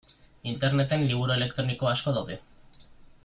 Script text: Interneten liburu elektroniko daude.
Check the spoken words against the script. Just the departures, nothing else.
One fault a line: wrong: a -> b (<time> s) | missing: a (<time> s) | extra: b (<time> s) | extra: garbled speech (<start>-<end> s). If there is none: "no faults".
extra: asko (1.9 s)